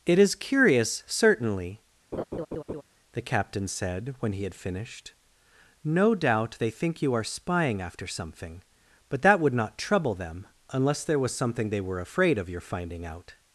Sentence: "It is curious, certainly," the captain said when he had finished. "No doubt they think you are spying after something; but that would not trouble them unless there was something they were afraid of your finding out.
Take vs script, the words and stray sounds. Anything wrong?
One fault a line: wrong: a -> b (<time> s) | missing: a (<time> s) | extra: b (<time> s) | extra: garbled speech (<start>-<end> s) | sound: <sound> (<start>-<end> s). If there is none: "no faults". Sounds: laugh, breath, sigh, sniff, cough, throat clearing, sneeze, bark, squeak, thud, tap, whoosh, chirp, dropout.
sound: laugh (2.1-2.8 s)